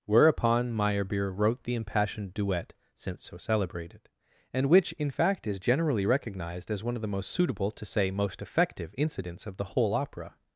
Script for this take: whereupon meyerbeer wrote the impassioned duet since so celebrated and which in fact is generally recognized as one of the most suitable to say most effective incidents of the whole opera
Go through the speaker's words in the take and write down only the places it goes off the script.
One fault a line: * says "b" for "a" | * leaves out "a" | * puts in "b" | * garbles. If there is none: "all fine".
all fine